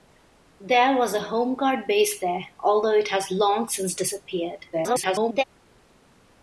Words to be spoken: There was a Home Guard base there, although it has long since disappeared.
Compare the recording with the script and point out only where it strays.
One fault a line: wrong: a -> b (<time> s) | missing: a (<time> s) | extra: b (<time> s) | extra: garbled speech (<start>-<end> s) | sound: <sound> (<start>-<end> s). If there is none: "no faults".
extra: garbled speech (4.7-5.4 s)